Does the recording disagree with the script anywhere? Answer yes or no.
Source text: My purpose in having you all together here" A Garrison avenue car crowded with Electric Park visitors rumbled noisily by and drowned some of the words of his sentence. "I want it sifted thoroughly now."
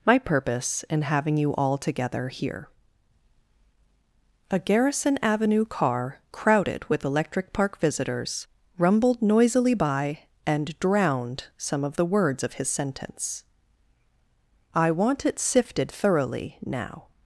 no